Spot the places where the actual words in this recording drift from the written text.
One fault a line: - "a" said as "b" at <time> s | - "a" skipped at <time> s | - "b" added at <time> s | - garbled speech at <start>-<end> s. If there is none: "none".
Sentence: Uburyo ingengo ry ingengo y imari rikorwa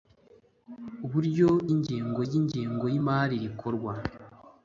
none